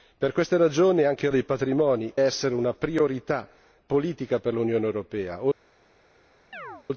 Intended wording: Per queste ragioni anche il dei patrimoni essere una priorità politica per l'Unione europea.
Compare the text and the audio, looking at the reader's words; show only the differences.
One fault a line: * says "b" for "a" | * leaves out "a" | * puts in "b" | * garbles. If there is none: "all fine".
all fine